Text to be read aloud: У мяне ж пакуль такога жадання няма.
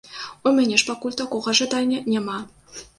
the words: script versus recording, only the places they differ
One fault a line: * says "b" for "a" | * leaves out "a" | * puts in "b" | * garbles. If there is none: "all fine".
all fine